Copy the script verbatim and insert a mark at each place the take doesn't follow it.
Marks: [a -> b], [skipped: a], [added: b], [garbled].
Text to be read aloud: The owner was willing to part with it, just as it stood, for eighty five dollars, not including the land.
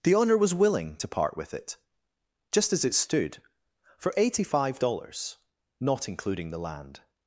The owner was willing to part with it, just as it stood, for eighty five dollars, not including the land.